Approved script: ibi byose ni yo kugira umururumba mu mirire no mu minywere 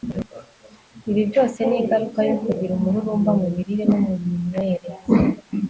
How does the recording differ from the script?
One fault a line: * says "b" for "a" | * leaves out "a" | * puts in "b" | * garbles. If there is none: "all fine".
* puts in "ingaruka"